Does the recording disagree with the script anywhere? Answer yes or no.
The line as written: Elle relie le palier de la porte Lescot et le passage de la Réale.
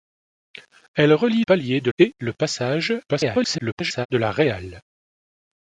yes